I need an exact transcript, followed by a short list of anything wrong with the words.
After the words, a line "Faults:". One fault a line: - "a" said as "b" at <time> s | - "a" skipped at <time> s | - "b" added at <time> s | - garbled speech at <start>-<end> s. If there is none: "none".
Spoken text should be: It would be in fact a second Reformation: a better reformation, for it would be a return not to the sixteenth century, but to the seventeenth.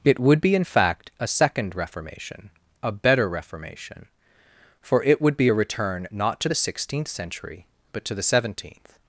It would be in fact a second Reformation: a better reformation, for it would be a return not to the sixteenth century, but to the seventeenth.
Faults:
none